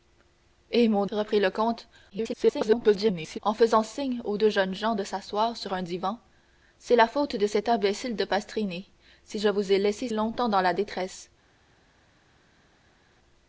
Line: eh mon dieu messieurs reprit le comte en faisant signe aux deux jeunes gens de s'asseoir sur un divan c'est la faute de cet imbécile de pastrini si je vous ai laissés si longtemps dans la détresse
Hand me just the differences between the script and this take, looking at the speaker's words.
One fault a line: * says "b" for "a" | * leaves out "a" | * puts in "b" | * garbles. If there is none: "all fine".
* leaves out "dieu messieurs"
* garbles
* leaves out "si"